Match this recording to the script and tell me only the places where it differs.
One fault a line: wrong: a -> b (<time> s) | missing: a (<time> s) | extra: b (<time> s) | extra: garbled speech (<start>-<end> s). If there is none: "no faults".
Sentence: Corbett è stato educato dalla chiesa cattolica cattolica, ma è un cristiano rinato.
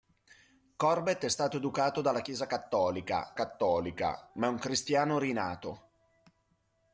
no faults